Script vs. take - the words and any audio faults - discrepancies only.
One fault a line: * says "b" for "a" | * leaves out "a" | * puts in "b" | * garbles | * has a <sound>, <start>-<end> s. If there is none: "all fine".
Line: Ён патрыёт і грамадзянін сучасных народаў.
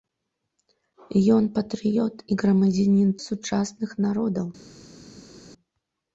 all fine